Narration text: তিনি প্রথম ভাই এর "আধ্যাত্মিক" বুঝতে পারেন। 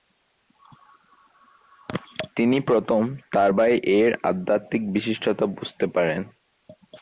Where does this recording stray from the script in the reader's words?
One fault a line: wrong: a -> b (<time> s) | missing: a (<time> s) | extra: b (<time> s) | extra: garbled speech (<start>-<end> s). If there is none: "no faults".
extra: তার (3.3 s)
extra: বিশিষ্টতা (4.9 s)